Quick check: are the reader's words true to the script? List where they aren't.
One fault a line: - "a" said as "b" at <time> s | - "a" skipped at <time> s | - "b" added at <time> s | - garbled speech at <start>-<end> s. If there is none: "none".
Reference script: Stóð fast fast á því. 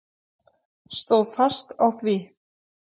- "fast" skipped at 1.7 s